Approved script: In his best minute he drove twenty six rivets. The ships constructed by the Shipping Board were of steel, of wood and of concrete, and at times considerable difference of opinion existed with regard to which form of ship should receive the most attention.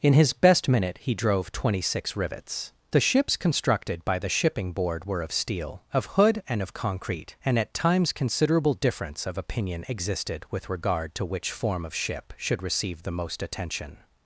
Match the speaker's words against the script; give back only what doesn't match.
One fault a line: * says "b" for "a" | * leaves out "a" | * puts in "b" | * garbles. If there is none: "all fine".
* says "hood" for "wood"